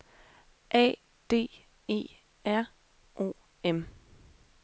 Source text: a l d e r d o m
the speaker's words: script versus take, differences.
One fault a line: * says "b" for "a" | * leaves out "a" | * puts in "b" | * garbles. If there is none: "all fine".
* leaves out "l"
* leaves out "d"